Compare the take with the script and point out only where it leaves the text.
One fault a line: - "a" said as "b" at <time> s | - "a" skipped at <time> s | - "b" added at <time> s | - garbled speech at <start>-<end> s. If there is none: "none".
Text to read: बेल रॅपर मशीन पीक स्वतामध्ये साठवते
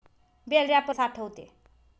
- "मशीन पीक स्वतामध्ये" skipped at 1.0 s